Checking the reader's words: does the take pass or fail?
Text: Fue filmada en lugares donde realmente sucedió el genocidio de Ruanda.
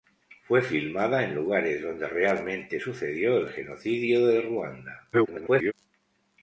fail